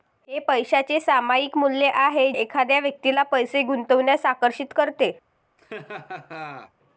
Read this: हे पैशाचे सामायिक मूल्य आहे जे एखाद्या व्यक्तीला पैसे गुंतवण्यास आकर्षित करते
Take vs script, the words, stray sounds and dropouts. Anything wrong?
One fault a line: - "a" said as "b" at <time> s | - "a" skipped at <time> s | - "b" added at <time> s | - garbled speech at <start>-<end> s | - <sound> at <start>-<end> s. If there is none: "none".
- "जे" skipped at 2.3 s
- laugh at 5.6-6.7 s